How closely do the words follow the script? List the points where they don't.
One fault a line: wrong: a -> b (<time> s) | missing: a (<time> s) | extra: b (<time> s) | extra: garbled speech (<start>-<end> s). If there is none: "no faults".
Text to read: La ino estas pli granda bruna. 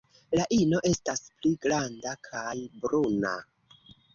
extra: kaj (2.3 s)